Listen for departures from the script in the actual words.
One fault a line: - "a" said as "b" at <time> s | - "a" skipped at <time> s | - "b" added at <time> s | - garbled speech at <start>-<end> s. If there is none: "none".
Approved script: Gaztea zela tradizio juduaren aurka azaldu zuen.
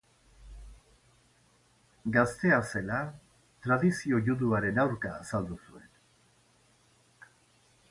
none